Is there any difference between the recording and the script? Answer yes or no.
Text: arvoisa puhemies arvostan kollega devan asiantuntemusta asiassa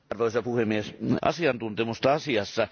yes